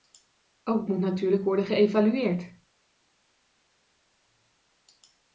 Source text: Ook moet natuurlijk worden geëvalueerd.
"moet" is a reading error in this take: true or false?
false